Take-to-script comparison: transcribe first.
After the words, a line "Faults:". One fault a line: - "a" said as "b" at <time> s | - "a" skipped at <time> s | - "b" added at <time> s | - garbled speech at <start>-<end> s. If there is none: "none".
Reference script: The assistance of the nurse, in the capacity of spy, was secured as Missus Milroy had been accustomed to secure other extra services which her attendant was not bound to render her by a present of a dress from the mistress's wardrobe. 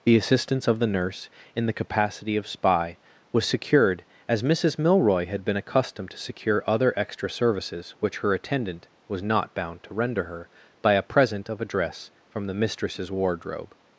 The assistance of the nurse, in the capacity of spy, was secured as Missus Milroy had been accustomed to secure other extra services which her attendant was not bound to render her by a present of a dress from the mistress's wardrobe.
Faults:
none